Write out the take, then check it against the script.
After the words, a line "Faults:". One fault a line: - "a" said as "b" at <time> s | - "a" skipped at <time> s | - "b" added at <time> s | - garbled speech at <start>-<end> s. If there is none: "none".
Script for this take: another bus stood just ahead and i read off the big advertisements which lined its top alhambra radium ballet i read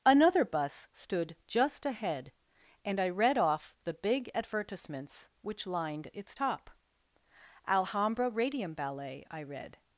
another bus stood just ahead and i read off the big advertisements which lined its top alhambra radium ballet i read
Faults:
none